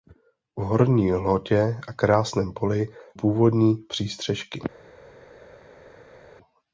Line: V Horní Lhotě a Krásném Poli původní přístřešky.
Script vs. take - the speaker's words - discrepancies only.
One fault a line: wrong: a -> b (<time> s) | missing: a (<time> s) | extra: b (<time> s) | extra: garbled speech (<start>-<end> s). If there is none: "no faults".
no faults